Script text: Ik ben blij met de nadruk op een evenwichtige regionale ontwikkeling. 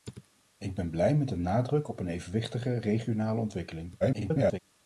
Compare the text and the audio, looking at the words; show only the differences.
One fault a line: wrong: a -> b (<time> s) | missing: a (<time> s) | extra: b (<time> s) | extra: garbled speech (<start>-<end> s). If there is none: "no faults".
extra: garbled speech (4.0-4.6 s)